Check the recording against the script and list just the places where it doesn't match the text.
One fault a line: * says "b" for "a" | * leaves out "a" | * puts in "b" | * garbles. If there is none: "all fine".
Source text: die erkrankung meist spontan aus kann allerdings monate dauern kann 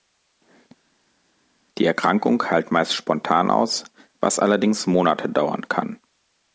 * puts in "heilt"
* says "was" for "kann"